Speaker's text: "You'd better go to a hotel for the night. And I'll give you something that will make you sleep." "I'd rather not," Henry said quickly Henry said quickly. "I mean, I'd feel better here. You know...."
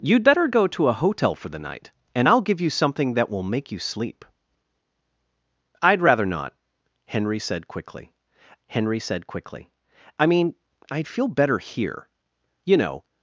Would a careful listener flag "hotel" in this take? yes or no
no